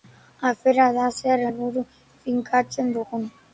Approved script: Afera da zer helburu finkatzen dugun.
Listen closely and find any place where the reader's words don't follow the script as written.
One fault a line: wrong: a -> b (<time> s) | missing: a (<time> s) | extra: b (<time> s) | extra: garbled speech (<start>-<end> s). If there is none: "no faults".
no faults